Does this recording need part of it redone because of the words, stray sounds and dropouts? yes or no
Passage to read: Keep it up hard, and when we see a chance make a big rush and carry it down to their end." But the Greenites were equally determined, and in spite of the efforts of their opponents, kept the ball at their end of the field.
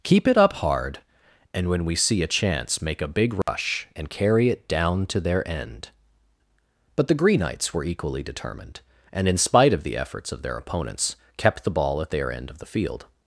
yes